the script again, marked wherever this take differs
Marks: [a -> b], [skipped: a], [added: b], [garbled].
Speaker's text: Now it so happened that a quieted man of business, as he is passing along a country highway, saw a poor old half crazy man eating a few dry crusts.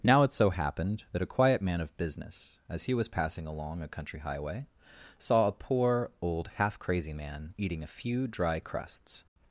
Now it so happened that a [quieted -> quiet] man of business, as he [is -> was] passing along a country highway, saw a poor old half crazy man eating a few dry crusts.